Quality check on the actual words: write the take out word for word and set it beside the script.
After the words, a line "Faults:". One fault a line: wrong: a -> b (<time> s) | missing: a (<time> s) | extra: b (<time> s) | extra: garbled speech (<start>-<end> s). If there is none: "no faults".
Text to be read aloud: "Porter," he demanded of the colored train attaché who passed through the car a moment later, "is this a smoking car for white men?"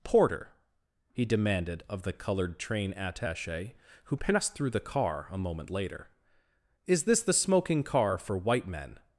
"Porter," he demanded of the colored train attaché who passed through the car a moment later, "is this the smoking car for white men?"
Faults:
wrong: a -> the (7.2 s)